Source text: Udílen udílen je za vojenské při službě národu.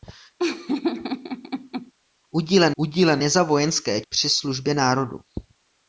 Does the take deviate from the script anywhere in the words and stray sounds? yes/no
yes